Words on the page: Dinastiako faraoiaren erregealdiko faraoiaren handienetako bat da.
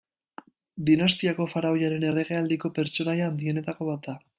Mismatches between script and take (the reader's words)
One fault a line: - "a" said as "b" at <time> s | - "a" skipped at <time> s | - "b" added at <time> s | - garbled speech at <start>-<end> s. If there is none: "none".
- "faraoiaren" said as "pertsonaia" at 2.8 s